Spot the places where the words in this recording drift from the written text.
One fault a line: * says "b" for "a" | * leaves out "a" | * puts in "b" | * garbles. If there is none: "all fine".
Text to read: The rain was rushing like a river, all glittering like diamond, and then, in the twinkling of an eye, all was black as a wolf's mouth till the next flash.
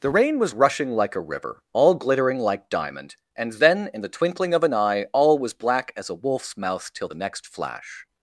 all fine